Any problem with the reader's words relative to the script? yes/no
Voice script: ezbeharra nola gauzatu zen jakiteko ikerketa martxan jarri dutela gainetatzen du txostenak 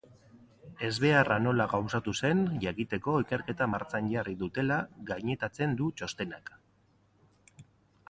no